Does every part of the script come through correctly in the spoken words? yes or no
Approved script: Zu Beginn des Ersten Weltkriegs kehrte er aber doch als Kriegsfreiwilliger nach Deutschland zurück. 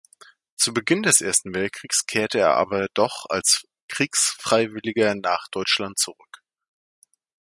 yes